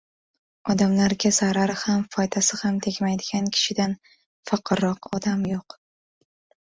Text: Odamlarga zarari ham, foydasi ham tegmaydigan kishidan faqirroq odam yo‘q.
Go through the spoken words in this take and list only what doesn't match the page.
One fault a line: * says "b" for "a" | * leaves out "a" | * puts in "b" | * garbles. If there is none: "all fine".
all fine